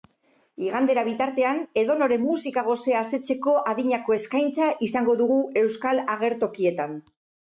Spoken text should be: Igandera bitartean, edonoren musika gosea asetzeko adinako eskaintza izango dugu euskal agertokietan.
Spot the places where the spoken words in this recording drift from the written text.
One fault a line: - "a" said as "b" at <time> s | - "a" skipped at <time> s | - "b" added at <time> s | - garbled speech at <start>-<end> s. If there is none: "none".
none